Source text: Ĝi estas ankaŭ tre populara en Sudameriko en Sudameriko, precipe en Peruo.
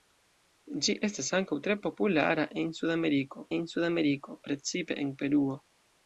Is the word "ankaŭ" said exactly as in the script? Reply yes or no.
yes